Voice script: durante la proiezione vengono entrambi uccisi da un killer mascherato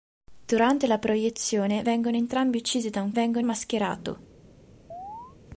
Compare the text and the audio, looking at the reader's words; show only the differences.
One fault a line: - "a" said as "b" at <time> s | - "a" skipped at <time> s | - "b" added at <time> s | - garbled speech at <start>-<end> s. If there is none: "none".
- "killer" said as "vengono" at 3.1 s